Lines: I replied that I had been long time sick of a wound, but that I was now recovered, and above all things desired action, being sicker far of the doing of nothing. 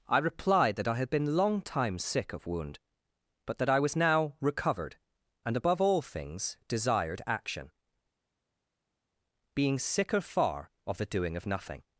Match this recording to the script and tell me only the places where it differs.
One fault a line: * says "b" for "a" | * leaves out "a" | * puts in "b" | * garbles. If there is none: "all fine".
* leaves out "a"